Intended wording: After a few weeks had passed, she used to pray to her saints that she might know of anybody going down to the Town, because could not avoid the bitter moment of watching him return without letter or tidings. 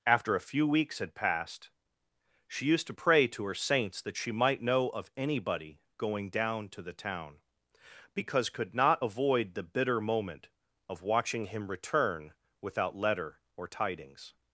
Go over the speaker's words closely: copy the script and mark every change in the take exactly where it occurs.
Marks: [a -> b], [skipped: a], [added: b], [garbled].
After a few weeks had passed, she used to pray to her saints that she might know of anybody going down to the Town, because could not avoid the bitter moment of watching him return without letter or tidings.